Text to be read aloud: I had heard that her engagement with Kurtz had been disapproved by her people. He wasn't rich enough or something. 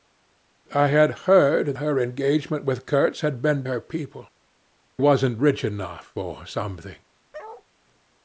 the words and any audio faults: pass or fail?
fail